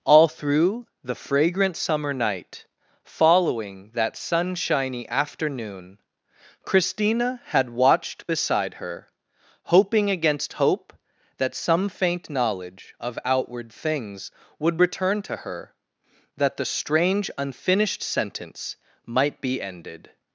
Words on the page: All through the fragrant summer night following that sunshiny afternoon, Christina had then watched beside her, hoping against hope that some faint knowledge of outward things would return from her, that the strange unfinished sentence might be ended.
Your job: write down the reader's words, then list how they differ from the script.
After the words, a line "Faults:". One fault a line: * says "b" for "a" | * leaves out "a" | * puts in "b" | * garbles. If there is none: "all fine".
All through the fragrant summer night following that sunshiny afternoon, Christina had watched beside her, hoping against hope that some faint knowledge of outward things would return to her, that the strange unfinished sentence might be ended.
Faults:
* leaves out "then"
* says "to" for "from"